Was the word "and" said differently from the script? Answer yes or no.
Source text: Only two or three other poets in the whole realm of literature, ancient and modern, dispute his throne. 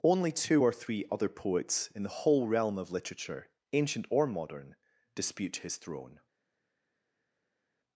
yes